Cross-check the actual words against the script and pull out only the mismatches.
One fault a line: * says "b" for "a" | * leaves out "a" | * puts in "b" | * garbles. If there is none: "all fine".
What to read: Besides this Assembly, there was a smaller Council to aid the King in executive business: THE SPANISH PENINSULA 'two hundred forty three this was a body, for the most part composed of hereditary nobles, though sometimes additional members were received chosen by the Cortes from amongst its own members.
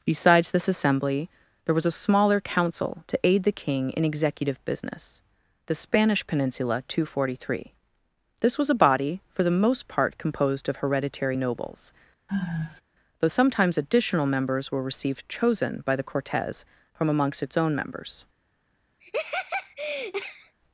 all fine